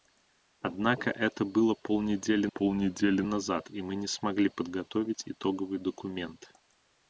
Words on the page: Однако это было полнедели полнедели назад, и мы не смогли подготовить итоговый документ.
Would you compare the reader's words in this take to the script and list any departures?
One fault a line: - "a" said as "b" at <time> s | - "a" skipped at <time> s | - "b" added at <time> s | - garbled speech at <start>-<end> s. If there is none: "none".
none